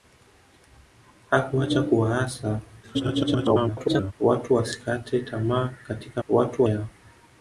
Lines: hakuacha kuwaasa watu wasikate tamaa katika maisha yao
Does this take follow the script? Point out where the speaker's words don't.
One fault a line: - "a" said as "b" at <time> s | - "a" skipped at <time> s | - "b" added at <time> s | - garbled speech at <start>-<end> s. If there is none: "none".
- garbled speech at 2.8-4.1 s
- "maisha" said as "watu" at 6.3 s